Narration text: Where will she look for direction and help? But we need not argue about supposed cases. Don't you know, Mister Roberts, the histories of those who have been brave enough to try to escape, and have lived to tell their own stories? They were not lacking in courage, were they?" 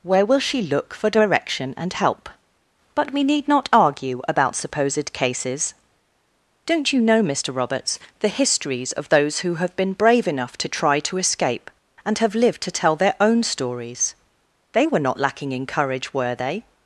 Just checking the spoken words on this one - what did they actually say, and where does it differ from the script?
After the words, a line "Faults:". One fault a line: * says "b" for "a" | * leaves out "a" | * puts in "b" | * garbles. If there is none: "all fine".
Where will she look for direction and help? But we need not argue about supposed cases. Don't you know, Mister Roberts, the histories of those who have been brave enough to try to escape, and have lived to tell their own stories? They were not lacking in courage, were they?"
Faults:
all fine